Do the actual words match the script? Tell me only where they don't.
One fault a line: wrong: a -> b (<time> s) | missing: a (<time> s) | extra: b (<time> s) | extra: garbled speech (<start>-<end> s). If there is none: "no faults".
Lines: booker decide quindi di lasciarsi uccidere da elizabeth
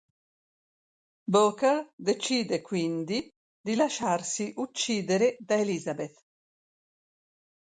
no faults